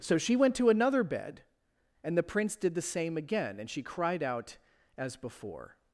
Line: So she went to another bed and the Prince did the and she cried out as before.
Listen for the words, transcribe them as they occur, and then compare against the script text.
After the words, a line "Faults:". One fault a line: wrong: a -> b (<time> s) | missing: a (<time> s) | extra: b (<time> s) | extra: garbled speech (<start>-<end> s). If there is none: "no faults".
So she went to another bed and the Prince did the same again and she cried out as before.
Faults:
extra: same again (2.8 s)